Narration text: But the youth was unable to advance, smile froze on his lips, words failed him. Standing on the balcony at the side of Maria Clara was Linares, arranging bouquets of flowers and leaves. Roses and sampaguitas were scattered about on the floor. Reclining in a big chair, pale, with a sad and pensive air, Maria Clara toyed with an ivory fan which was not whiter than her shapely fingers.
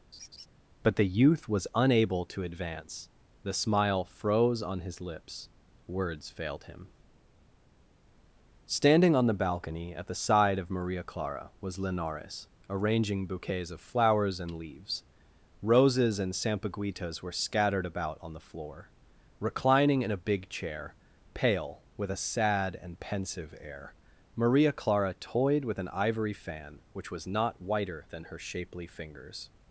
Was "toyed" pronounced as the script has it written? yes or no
yes